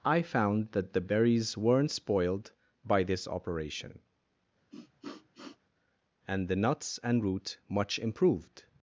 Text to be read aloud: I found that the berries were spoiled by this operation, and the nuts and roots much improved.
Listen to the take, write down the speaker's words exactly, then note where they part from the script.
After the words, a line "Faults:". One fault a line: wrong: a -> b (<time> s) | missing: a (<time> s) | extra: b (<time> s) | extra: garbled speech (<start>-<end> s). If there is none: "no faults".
I found that the berries weren't spoiled by this operation, and the nuts and root much improved.
Faults:
wrong: were -> weren't (1.6 s)
wrong: roots -> root (7.2 s)